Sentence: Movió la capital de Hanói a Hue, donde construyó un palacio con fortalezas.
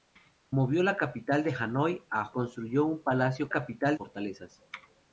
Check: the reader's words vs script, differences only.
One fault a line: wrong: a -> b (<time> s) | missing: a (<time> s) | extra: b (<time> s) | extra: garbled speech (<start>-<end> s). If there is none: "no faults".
missing: Hue donde (2.3 s)
wrong: con -> capital (3.5 s)